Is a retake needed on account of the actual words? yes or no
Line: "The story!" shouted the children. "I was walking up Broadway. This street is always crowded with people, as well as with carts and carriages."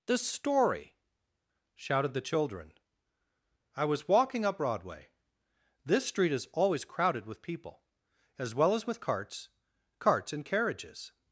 yes